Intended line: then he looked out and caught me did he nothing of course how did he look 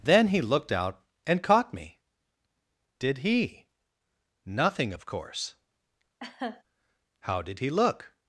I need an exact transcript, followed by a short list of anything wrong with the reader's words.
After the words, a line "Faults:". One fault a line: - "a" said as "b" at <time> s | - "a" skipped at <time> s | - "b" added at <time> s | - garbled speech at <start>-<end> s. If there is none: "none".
then he looked out and caught me did he nothing of course how did he look
Faults:
none